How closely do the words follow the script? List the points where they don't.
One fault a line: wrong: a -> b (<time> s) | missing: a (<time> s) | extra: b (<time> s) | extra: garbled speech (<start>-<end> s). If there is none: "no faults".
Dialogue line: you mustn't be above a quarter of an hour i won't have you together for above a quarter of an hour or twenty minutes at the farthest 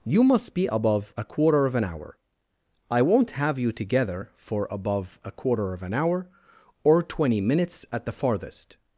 wrong: mustn't -> must (0.2 s)